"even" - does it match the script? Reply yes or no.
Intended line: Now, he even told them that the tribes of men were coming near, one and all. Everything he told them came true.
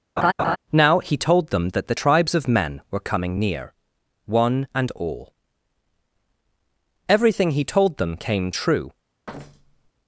no